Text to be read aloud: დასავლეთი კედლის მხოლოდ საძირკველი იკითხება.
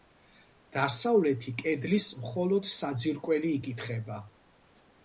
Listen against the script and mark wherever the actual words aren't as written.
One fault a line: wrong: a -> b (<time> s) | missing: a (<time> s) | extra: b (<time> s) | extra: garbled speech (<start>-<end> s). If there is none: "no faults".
no faults